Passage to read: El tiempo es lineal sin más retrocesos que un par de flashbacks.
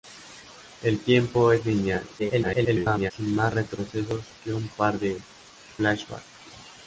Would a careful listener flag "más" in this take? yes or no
no